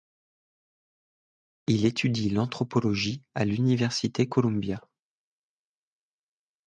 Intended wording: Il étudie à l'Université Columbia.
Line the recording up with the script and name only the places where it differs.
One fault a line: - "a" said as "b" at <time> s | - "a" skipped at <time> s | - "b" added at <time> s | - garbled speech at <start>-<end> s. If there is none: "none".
- "l'Anthropologie" added at 2.3 s